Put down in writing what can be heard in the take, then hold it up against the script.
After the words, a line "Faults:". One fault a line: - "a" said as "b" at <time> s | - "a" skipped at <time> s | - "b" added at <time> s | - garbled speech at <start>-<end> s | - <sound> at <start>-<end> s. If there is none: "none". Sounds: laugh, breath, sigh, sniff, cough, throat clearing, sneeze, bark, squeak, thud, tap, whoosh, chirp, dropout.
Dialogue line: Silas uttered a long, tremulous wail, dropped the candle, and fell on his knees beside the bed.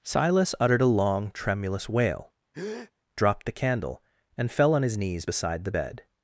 Silas uttered a long, tremulous wail, dropped the candle, and fell on his knees beside the bed.
Faults:
- breath at 2.5-2.9 s